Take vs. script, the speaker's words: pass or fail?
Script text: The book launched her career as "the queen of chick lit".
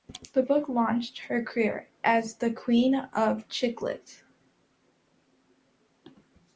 pass